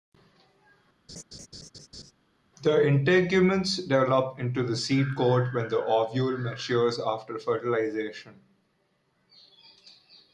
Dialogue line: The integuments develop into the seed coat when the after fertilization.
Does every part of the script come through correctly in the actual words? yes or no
no